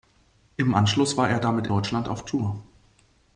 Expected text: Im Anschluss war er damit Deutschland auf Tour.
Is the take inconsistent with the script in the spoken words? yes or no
no